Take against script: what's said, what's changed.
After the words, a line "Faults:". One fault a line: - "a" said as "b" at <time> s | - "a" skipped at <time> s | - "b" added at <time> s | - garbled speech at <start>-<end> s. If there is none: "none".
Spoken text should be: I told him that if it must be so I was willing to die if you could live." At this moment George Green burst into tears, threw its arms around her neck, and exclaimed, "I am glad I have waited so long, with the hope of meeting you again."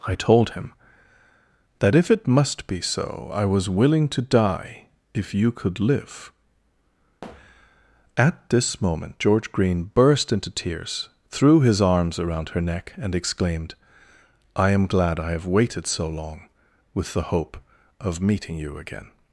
I told him that if it must be so I was willing to die if you could live." At this moment George Green burst into tears, threw his arms around her neck, and exclaimed, "I am glad I have waited so long, with the hope of meeting you again."
Faults:
- "its" said as "his" at 11.6 s